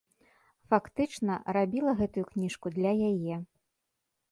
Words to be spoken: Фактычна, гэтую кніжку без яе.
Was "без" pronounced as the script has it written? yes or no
no